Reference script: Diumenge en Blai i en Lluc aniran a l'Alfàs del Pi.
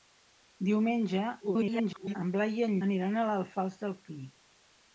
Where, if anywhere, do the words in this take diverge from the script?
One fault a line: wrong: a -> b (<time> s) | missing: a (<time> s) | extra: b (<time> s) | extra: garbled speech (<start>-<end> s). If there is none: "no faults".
extra: garbled speech (1.4-2.1 s)
missing: Lluc (2.7 s)